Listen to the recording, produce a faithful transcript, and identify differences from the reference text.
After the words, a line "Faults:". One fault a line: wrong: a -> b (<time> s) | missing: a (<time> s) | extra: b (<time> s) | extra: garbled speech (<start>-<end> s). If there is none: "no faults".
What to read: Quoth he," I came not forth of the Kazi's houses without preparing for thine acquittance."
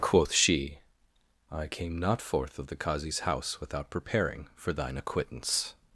Quoth she," I came not forth of the Kazi's house without preparing for thine acquittance."
Faults:
wrong: he -> she (0.3 s)
wrong: houses -> house (3.2 s)